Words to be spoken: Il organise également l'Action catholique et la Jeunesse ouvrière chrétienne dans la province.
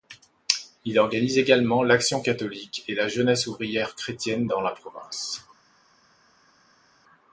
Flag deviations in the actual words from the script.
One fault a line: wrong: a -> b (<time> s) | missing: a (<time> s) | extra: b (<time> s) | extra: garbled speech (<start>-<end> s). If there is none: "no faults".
no faults